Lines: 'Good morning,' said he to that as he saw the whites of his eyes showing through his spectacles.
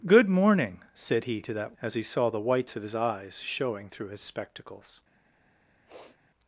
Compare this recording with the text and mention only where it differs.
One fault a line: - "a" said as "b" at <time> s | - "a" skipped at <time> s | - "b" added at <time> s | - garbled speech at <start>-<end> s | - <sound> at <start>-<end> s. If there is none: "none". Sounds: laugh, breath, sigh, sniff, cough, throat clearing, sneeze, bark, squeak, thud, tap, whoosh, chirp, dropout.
- sniff at 5.9-6.2 s